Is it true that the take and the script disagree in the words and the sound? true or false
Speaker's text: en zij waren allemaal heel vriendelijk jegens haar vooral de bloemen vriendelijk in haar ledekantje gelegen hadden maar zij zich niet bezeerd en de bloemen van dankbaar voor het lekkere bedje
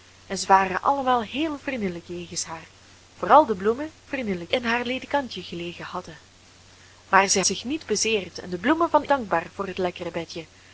false